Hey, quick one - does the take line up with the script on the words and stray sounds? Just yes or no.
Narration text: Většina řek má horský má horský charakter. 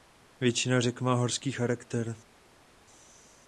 no